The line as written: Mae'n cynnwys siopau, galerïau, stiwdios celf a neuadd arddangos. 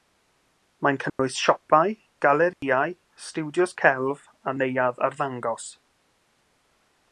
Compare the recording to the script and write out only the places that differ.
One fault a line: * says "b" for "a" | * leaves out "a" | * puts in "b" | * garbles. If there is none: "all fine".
all fine